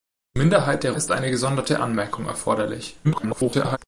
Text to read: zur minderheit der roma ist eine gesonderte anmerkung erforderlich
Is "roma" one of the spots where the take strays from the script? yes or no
yes